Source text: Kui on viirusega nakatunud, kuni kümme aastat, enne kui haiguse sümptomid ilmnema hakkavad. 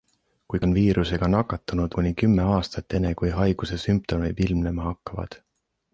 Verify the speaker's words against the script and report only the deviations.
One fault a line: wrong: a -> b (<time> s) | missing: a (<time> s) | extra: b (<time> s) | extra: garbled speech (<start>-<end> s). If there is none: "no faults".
no faults